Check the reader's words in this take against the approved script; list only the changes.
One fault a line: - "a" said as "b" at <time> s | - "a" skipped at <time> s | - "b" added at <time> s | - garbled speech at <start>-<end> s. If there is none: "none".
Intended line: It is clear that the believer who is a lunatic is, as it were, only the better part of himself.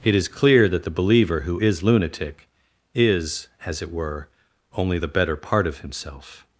- "a" skipped at 1.8 s